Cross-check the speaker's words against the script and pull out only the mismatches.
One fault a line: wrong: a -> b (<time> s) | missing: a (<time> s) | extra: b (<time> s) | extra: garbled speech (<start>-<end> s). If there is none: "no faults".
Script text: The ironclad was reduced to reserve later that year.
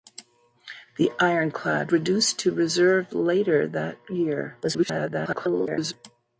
missing: was (1.9 s)
extra: garbled speech (4.6-5.9 s)